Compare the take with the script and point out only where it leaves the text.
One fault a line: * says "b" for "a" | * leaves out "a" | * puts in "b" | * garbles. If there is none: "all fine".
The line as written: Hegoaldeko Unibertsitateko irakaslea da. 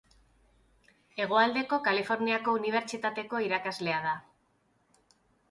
* puts in "Kaliforniako"